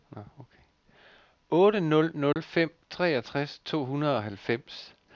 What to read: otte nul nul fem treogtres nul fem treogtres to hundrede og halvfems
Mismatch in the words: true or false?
true